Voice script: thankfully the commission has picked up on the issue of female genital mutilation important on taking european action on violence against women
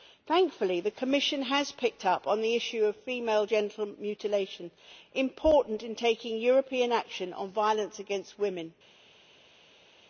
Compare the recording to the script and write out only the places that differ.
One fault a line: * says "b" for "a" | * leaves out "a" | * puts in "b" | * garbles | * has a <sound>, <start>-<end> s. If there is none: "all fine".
* says "in" for "on"